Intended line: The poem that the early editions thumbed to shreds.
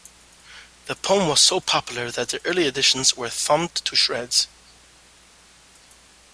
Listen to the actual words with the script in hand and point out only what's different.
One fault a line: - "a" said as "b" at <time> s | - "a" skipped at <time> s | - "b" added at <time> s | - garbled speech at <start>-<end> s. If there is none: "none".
- "was so popular" added at 1.3 s
- "were" added at 3.1 s